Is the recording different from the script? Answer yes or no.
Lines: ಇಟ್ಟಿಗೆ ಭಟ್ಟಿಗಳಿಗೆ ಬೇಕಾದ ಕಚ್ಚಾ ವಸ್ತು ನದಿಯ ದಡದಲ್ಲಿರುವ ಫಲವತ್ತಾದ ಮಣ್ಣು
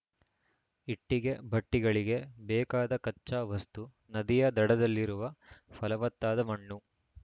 no